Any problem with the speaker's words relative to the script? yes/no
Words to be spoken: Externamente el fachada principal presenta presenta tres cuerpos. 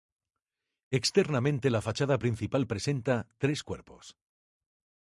yes